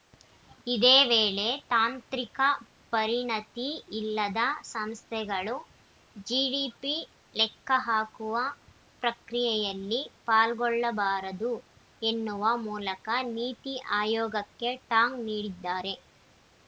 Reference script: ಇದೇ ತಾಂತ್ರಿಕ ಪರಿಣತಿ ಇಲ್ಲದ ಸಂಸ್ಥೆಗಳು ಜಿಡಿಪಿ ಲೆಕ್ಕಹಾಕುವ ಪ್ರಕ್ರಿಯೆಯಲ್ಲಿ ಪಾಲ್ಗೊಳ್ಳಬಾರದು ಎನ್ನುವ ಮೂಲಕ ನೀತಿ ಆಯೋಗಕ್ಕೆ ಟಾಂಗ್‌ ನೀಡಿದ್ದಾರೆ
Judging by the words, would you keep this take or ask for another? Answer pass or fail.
fail